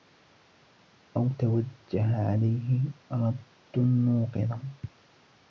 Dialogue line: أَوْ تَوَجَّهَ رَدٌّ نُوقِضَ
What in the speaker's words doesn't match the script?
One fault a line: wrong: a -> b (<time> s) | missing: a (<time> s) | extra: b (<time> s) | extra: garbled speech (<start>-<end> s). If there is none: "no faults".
extra: عَلَيْهِ (2.3 s)